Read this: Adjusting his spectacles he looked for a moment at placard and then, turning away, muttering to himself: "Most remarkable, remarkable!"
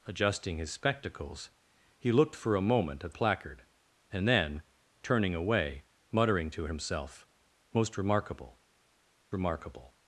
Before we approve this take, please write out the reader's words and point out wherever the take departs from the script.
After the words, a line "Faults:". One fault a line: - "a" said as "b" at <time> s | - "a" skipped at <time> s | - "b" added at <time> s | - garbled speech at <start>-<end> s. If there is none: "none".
Adjusting his spectacles he looked for a moment at placard and then, turning away, muttering to himself: "Most remarkable, remarkable!"
Faults:
none